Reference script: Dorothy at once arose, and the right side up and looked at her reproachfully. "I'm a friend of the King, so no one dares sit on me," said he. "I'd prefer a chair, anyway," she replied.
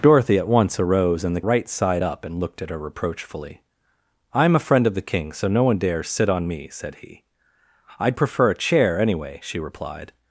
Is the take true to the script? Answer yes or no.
yes